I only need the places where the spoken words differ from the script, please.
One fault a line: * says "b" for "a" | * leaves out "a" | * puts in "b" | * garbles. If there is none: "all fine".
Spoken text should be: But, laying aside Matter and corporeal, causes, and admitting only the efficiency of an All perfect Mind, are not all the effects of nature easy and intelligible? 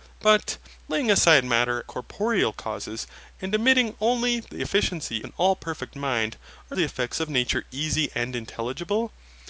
* leaves out "and"
* leaves out "of"
* leaves out "not all"